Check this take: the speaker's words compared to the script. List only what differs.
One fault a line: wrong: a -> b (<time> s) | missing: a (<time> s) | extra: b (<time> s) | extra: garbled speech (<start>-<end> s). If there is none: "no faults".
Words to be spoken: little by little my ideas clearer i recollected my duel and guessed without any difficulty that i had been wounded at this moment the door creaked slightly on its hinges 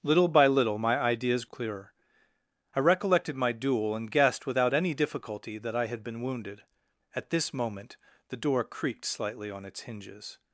no faults